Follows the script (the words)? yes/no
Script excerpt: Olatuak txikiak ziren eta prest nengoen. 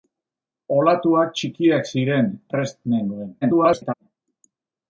no